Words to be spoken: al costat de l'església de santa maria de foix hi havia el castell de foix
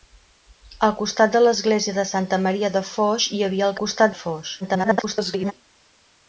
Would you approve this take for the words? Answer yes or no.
no